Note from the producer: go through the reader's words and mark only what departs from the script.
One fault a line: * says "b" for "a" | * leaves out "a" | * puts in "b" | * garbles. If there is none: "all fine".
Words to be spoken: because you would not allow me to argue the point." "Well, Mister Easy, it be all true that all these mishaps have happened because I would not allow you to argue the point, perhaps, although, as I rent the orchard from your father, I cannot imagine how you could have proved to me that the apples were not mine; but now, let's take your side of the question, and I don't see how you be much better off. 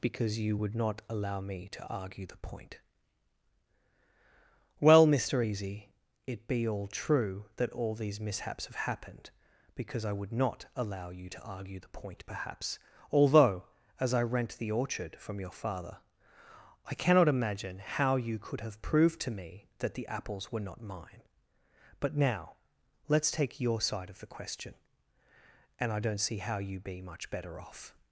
all fine